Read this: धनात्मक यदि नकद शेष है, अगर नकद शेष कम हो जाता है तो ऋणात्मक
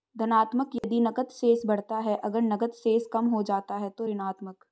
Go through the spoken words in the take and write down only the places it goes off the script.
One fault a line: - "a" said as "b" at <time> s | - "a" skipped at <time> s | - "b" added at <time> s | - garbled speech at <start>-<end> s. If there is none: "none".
- "बढ़ता" added at 1.6 s